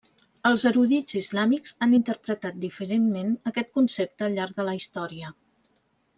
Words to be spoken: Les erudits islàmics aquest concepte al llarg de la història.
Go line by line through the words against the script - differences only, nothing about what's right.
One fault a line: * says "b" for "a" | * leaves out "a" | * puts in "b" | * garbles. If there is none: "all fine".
* says "Els" for "Les"
* puts in "han interpretat diferentment"